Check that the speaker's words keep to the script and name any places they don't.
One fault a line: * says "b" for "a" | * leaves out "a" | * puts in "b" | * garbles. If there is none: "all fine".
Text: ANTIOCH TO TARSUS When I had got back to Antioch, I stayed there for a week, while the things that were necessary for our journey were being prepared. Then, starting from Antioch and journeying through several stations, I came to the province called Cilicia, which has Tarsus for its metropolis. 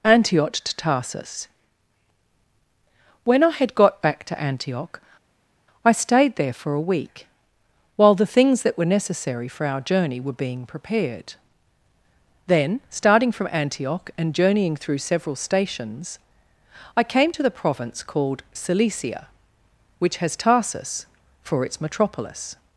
all fine